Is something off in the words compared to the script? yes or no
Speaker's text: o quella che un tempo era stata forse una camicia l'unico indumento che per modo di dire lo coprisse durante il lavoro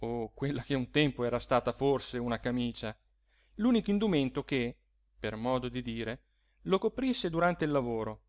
no